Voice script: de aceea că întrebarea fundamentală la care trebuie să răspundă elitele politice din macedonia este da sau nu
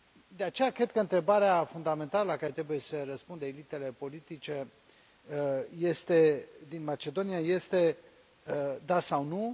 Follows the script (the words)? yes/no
no